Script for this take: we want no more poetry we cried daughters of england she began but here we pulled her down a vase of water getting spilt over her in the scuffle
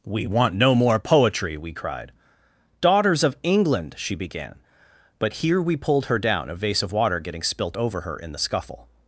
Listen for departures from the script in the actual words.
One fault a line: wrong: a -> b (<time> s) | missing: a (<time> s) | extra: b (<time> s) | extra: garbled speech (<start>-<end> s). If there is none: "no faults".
no faults